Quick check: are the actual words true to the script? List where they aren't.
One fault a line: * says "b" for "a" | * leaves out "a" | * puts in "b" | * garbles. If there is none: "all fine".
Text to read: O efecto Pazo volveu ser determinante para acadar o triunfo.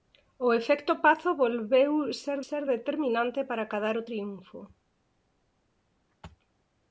* puts in "ser"